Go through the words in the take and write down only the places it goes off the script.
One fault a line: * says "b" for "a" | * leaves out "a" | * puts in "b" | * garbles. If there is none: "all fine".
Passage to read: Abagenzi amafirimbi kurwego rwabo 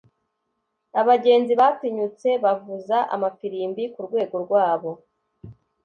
* puts in "batinyutse bavuza"